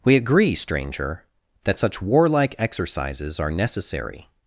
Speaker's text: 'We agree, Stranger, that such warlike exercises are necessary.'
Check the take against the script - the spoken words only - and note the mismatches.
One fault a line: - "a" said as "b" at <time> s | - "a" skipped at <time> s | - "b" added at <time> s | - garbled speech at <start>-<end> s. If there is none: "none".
none